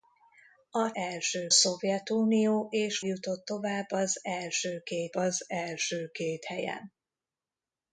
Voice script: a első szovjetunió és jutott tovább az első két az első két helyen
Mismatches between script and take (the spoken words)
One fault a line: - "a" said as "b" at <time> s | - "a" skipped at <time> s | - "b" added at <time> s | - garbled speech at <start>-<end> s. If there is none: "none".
none